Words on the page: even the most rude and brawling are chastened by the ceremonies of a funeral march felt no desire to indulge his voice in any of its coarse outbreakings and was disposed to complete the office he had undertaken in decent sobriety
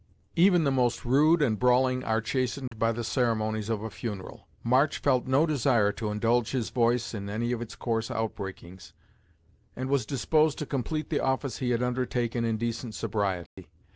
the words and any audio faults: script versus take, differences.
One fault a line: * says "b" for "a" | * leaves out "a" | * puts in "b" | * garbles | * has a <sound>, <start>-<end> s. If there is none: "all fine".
* has a dropout, 2.7-2.7 s
* has a dropout, 13.5-13.6 s